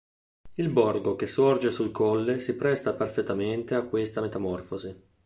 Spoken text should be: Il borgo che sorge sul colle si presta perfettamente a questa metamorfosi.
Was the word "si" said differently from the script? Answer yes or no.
no